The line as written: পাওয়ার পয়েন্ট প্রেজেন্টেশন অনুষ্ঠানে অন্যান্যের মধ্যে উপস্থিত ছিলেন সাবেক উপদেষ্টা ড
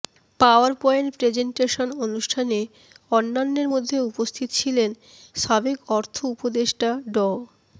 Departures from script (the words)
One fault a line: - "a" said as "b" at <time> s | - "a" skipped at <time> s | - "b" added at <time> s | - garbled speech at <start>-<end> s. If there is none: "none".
- "অর্থ" added at 5.9 s